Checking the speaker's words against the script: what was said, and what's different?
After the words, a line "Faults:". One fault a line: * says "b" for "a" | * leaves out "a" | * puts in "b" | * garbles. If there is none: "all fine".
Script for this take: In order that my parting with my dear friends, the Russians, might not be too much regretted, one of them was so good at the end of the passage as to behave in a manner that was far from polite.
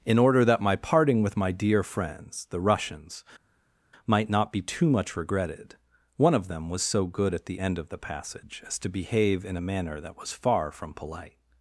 In order that my parting with my dear friends, the Russians, might not be too much regretted, one of them was so good at the end of the passage as to behave in a manner that was far from polite.
Faults:
all fine